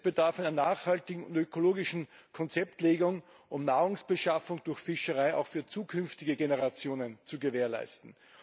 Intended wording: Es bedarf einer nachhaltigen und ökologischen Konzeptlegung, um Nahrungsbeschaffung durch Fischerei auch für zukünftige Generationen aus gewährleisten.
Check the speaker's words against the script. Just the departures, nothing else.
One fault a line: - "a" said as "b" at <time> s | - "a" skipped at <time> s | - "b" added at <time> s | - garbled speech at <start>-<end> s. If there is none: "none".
- "aus" said as "zu" at 7.2 s